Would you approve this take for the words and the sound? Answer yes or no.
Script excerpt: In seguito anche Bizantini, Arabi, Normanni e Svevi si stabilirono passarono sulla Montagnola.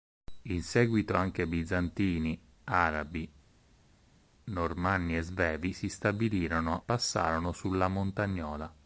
yes